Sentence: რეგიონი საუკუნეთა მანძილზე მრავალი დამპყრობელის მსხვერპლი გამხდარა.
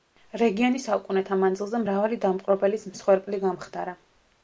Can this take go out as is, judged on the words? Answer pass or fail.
pass